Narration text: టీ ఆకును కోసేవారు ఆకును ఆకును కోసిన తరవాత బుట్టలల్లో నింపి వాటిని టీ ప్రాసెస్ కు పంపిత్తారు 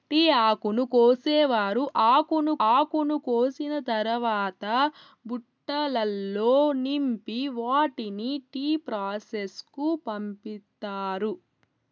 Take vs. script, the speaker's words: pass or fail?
pass